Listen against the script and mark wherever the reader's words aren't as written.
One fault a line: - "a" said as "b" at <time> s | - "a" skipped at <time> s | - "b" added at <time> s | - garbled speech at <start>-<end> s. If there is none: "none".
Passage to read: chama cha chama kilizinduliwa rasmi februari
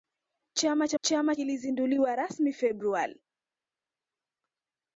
none